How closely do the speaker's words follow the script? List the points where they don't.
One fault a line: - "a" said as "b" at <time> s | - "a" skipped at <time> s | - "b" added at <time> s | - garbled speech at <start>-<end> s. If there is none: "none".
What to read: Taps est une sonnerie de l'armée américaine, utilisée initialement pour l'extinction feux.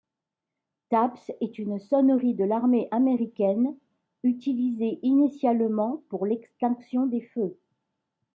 - "des" added at 7.0 s